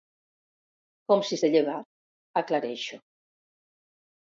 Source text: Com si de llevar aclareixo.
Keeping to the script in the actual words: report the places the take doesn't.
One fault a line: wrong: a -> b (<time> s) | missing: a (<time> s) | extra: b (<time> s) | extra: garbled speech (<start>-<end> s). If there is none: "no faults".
no faults